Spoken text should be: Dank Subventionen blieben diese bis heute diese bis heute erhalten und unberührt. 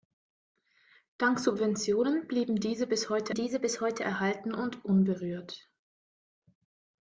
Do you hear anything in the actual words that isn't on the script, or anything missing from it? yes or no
no